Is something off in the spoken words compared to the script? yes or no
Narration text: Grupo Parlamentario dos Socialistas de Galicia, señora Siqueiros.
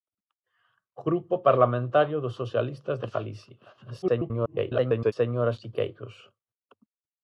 yes